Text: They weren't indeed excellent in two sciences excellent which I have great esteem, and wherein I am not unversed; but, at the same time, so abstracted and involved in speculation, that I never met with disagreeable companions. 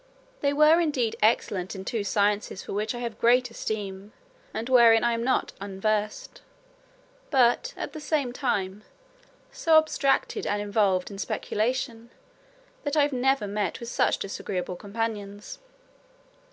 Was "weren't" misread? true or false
true